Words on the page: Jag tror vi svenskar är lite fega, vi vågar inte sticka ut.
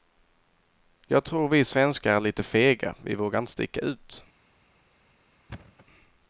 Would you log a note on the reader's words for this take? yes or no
no